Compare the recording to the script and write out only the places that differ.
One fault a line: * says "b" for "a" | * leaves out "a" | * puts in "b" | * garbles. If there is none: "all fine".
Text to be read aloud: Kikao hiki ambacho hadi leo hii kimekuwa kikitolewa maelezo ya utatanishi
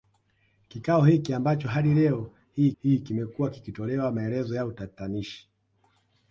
* puts in "hii"